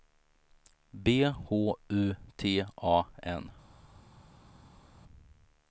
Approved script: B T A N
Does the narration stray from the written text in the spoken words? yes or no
yes